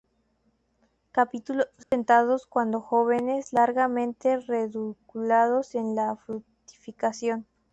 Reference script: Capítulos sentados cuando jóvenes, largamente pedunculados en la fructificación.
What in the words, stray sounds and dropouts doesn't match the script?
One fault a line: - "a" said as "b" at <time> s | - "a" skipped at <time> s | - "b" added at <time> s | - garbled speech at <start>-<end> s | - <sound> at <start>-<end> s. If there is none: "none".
- dropout at 1.8-1.9 s